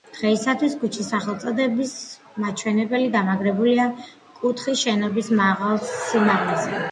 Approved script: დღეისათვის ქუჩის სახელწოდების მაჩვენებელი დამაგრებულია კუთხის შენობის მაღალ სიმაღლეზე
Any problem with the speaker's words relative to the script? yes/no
no